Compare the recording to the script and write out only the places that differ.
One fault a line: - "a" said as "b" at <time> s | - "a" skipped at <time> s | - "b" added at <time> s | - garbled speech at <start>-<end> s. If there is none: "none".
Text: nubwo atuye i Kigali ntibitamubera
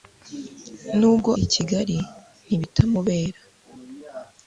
- "atuye" skipped at 1.3 s